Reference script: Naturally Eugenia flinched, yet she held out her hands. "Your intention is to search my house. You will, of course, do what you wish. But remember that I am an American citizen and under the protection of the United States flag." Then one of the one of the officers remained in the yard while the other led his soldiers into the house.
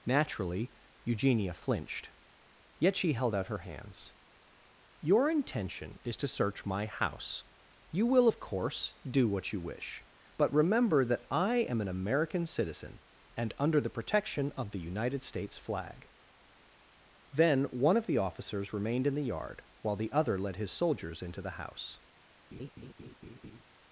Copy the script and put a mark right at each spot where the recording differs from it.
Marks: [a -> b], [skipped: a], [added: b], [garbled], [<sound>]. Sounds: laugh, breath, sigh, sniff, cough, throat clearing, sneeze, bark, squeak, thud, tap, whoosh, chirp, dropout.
Naturally Eugenia flinched, yet she held out her hands. "Your intention is to search my house. You will, of course, do what you wish. But remember that I am an American citizen and under the protection of the United States flag." Then one of the [skipped: one of the] officers remained in the yard while the other led his soldiers into the house. [laugh]